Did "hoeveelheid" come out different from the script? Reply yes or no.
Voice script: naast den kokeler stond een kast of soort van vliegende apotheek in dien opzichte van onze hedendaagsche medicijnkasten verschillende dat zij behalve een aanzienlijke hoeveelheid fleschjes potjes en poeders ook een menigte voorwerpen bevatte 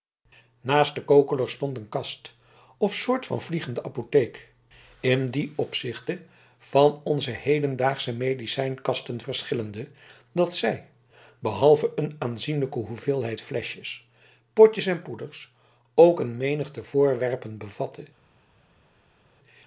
no